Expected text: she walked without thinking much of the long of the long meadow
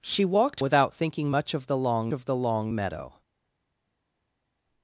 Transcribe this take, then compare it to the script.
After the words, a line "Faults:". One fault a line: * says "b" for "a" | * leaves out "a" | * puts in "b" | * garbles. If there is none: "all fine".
she walked without thinking much of the long of the long meadow
Faults:
all fine